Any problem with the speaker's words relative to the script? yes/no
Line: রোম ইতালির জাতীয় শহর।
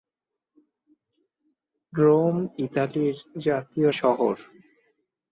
no